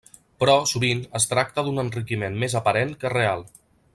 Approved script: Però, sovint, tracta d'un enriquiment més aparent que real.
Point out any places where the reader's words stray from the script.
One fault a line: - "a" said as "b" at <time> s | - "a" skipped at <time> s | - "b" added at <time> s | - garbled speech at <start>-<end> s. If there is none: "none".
- "es" added at 1.2 s